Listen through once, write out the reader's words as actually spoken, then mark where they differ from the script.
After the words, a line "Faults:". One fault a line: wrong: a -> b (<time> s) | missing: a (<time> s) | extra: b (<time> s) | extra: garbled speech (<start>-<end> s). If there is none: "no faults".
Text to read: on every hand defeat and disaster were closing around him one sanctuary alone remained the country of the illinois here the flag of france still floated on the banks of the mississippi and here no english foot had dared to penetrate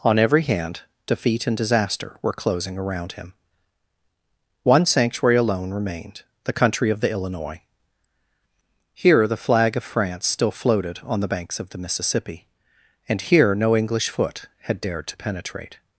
on every hand defeat and disaster were closing around him one sanctuary alone remained the country of the illinois here the flag of france still floated on the banks of the mississippi and here no english foot had dared to penetrate
Faults:
no faults